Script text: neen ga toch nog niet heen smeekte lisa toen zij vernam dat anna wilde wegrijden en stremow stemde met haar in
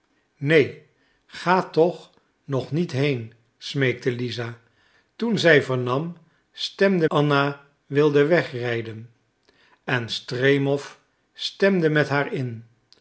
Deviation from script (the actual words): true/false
true